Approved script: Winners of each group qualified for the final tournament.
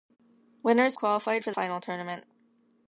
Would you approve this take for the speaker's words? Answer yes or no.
no